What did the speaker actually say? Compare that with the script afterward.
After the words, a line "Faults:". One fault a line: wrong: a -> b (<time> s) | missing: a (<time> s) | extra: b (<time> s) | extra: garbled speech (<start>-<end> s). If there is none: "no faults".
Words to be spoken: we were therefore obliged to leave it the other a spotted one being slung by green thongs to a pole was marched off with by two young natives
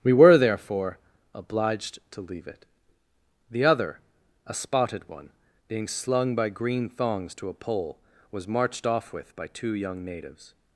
we were therefore obliged to leave it the other a spotted one being slung by green thongs to a pole was marched off with by two young natives
Faults:
no faults